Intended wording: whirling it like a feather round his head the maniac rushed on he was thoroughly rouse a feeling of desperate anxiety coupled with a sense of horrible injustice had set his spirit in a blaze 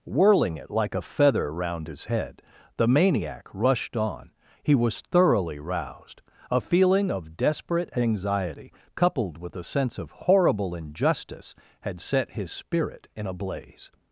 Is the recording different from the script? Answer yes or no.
yes